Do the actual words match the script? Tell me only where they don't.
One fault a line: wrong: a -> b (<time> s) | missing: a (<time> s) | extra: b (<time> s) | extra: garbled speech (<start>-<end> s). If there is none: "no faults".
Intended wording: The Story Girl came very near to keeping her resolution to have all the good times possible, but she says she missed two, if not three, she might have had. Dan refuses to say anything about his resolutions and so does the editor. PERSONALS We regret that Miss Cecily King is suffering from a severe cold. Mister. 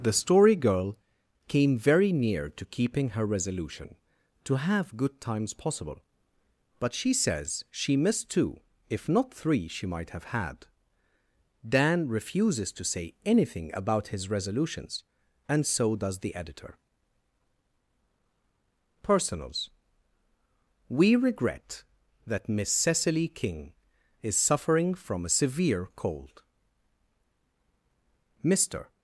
missing: all the (5.0 s)